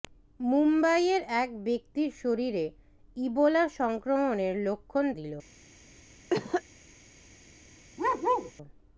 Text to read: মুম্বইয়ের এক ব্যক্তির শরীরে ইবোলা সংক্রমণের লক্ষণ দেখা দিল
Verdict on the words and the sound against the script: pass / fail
fail